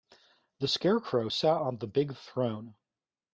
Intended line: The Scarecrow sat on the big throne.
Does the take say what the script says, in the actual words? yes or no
yes